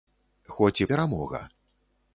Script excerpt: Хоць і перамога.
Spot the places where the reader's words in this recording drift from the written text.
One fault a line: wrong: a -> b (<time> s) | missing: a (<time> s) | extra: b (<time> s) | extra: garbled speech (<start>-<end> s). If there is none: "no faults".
no faults